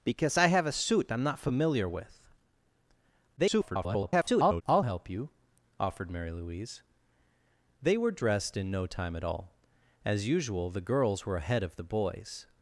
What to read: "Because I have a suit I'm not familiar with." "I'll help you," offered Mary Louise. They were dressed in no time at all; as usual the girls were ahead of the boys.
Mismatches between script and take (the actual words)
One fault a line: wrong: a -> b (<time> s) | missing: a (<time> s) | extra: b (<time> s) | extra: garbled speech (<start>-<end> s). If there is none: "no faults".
extra: garbled speech (3.4-4.6 s)